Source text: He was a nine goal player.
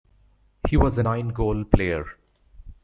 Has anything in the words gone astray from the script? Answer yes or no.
no